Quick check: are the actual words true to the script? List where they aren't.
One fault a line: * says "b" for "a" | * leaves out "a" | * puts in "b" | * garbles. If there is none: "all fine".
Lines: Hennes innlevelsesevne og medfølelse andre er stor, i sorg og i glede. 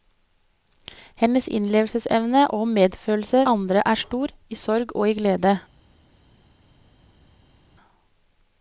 all fine